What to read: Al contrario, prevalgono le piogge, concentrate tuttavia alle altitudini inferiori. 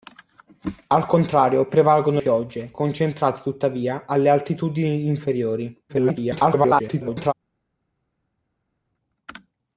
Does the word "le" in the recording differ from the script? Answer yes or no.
yes